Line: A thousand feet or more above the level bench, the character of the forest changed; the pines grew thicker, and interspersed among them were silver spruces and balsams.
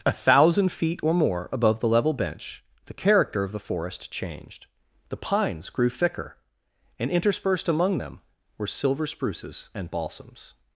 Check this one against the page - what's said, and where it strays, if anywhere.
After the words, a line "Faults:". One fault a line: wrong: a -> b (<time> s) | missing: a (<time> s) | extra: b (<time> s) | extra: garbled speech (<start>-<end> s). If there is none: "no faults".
A thousand feet or more above the level bench, the character of the forest changed; the pines grew thicker, and interspersed among them were silver spruces and balsams.
Faults:
no faults